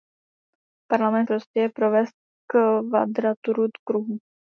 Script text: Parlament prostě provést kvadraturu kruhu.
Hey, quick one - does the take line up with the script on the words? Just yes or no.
yes